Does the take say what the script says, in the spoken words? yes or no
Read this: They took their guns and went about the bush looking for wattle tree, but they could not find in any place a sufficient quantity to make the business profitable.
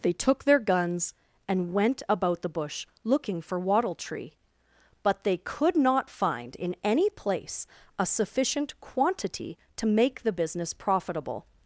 yes